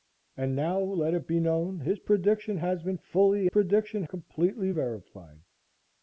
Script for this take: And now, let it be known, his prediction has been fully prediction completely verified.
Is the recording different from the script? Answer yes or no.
no